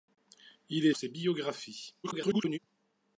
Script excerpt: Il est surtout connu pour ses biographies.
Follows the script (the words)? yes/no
no